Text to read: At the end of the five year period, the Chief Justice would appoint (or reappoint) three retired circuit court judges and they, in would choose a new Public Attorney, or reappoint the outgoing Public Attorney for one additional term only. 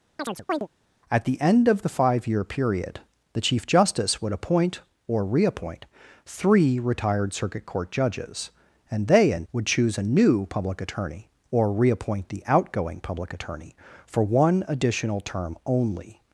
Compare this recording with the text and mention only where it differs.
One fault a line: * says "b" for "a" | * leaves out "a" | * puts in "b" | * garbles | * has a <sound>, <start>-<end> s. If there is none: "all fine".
* has a chirp, 0.2-0.7 s